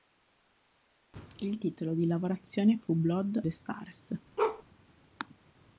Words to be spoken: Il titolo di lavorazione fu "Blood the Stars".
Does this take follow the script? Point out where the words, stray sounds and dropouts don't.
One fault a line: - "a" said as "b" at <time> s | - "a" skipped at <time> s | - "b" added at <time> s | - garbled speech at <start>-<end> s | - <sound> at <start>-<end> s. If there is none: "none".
- bark at 4.4-4.6 s